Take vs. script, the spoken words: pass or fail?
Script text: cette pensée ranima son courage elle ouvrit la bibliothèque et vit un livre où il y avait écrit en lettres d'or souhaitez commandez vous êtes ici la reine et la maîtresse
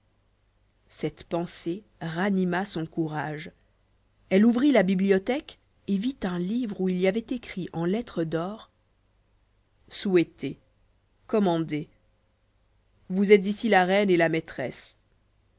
pass